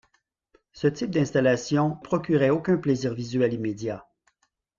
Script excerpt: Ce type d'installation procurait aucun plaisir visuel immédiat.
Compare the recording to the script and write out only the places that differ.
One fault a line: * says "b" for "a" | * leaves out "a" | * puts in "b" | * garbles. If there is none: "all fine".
all fine